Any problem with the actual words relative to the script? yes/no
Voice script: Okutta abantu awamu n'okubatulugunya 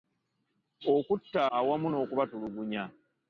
yes